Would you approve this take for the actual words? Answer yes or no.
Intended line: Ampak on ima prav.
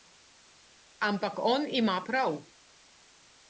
yes